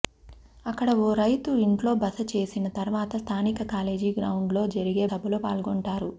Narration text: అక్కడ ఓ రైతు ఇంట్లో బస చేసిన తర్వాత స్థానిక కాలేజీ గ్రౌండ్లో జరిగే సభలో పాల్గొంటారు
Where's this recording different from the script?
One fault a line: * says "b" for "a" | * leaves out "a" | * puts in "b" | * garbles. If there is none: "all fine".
all fine